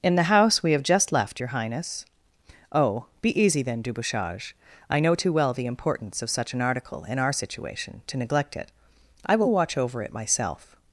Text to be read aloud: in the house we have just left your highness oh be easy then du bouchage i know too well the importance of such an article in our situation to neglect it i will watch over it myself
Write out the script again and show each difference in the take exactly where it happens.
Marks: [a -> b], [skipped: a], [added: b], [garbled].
in the house we have just left your highness oh be easy then du bouchage i know too well the importance of such an article in our situation to neglect it i will watch over it myself